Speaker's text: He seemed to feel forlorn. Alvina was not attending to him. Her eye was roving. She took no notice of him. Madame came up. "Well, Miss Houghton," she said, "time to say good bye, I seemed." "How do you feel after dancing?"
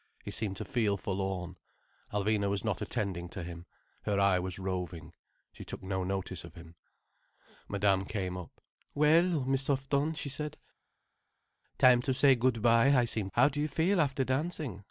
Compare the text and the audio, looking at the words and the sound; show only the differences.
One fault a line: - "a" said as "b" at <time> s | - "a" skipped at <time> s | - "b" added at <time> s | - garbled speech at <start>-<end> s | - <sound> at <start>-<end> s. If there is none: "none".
none